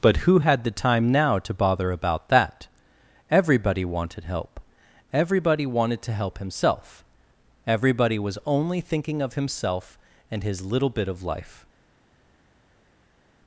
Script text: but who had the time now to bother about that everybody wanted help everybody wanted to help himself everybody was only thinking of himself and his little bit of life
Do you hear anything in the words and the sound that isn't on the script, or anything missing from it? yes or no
no